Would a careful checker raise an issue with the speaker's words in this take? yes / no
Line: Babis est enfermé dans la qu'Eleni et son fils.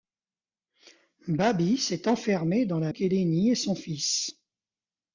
no